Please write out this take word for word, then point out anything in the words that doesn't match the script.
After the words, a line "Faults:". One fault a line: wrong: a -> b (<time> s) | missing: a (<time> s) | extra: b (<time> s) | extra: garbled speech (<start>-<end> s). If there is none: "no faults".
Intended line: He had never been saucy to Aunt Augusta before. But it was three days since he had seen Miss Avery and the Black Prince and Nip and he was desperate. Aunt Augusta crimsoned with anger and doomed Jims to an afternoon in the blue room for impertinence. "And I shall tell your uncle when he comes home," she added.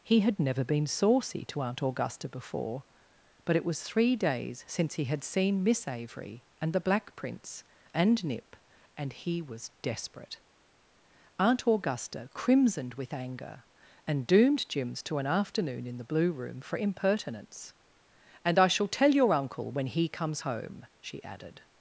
He had never been saucy to Aunt Augusta before. But it was three days since he had seen Miss Avery and the Black Prince and Nip and he was desperate. Aunt Augusta crimsoned with anger and doomed Jims to an afternoon in the blue room for impertinence. "And I shall tell your uncle when he comes home," she added.
Faults:
no faults